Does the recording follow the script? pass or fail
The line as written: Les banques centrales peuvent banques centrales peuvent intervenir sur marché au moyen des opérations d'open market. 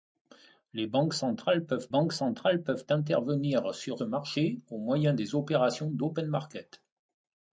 pass